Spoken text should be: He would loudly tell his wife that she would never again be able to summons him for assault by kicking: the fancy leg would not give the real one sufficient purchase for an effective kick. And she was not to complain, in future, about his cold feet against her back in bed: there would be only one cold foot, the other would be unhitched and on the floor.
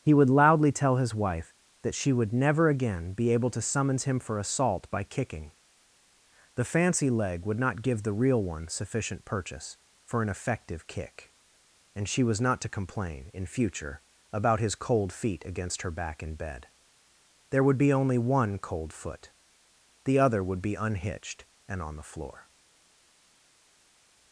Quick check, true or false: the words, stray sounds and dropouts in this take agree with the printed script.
true